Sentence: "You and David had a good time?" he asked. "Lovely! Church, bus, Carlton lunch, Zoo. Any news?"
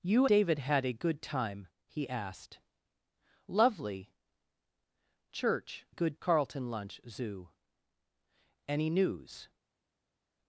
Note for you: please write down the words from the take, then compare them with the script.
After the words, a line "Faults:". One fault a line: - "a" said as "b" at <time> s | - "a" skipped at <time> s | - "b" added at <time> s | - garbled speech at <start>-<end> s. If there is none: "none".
"You David had a good time?" he asked. "Lovely! Church, good, Carlton lunch, Zoo. Any news?"
Faults:
- "and" skipped at 0.2 s
- "bus" said as "good" at 5.9 s